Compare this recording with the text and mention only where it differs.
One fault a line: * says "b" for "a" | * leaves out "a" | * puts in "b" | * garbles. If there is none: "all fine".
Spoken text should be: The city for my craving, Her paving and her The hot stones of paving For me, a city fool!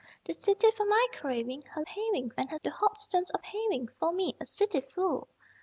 all fine